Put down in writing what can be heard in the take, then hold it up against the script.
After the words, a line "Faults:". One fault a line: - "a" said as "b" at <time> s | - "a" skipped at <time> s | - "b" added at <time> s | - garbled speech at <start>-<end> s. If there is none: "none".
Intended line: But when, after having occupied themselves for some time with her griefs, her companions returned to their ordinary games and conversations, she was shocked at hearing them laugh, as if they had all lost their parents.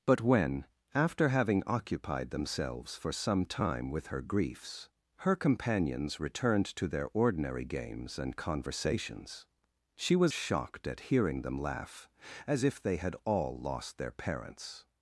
But when, after having occupied themselves for some time with her griefs, her companions returned to their ordinary games and conversations, she was shocked at hearing them laugh, as if they had all lost their parents.
Faults:
none